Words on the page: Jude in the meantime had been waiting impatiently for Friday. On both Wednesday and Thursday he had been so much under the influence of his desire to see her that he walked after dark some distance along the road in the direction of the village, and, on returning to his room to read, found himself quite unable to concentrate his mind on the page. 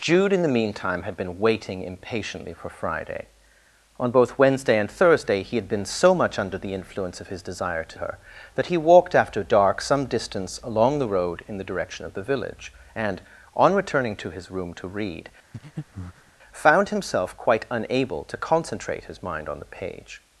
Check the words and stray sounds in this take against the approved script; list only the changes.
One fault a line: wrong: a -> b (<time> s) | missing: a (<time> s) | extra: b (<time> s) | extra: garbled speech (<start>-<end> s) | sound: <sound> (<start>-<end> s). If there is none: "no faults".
missing: see (8.0 s)
sound: breath (15.5-16.3 s)